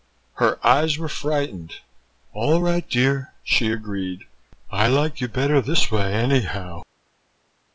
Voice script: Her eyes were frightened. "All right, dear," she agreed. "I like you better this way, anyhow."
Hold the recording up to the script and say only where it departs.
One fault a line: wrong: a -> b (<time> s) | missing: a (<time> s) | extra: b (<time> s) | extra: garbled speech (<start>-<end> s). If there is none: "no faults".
no faults